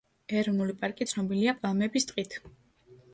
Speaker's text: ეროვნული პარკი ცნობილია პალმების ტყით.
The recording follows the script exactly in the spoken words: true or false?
true